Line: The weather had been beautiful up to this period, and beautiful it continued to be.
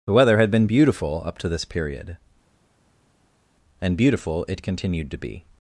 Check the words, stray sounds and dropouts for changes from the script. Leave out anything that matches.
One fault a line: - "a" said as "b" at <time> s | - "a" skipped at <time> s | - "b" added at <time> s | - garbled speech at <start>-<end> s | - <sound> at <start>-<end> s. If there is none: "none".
none